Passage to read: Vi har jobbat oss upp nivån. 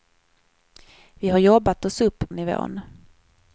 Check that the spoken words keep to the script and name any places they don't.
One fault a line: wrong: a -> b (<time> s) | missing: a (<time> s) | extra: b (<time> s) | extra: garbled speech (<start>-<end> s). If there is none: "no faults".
no faults